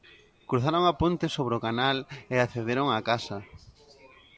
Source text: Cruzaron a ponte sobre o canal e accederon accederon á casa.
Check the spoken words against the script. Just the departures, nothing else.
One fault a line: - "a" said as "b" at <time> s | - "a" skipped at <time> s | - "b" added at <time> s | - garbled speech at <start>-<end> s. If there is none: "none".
- "accederon" skipped at 2.9 s